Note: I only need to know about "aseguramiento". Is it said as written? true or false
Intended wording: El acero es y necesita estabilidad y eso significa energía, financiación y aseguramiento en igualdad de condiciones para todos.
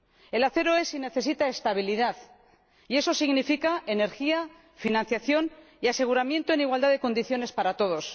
true